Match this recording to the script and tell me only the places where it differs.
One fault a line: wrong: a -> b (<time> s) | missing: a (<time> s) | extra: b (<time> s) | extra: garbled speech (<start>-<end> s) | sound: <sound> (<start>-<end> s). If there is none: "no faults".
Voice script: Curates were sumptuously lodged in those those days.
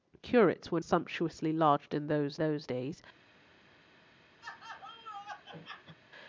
sound: laugh (4.4-6.0 s)